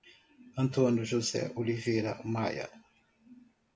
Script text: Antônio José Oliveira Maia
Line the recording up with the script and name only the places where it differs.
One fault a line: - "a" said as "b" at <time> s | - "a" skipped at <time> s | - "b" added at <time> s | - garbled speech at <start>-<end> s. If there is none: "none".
none